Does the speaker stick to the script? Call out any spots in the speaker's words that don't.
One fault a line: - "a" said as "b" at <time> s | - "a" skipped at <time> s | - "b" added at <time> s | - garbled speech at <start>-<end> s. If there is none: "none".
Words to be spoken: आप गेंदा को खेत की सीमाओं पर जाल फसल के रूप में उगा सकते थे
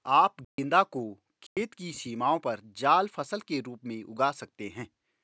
- "थे" said as "हैं" at 4.7 s